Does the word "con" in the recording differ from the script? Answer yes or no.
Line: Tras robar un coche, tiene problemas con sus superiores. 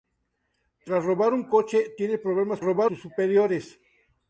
yes